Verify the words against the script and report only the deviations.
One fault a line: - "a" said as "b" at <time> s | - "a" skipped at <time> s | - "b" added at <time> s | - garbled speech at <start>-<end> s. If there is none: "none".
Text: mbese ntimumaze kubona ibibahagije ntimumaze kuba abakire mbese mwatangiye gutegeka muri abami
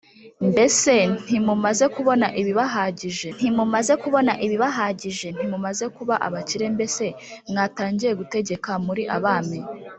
- "kubona ibibahagije ntimumaze" added at 4.0 s